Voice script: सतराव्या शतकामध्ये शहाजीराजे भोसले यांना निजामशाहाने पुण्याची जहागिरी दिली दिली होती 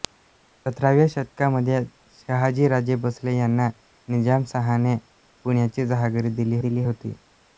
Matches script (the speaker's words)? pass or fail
pass